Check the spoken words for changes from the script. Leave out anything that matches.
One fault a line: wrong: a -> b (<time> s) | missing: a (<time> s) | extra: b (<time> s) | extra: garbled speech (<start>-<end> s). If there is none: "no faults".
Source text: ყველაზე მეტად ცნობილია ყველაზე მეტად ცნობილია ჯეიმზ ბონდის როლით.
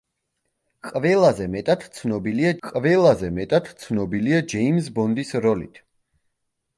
no faults